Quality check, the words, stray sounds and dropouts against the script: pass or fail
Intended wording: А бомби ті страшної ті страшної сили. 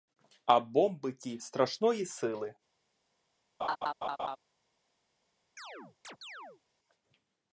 fail